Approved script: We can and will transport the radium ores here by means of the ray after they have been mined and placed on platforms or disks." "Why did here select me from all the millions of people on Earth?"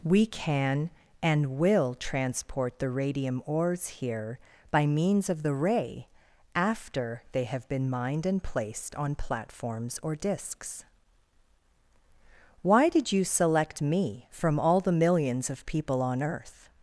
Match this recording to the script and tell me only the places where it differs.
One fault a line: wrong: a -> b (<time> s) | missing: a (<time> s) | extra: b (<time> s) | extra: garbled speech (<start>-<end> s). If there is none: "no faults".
wrong: here -> you (13.1 s)